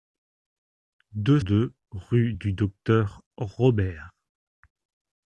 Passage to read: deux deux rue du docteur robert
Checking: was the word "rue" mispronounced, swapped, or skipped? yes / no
no